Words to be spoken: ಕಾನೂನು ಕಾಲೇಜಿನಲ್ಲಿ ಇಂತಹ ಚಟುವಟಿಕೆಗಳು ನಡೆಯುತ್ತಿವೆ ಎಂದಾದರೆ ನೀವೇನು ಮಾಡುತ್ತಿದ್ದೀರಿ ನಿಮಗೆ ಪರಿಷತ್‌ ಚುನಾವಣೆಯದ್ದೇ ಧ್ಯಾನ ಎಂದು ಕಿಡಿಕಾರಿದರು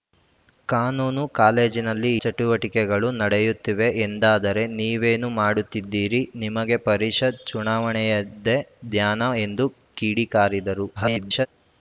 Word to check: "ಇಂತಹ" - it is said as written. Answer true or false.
false